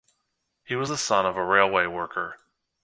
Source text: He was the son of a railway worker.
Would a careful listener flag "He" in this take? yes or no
no